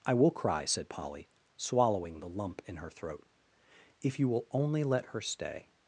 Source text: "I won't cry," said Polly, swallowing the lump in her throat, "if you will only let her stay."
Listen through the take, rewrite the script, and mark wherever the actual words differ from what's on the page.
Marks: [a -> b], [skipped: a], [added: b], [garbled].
"I [won't -> will] cry," said Polly, swallowing the lump in her throat, "if you will only let her stay."